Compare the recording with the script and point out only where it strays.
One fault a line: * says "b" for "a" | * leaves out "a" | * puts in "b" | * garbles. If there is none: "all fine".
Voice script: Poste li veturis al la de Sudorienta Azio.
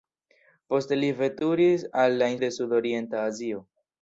all fine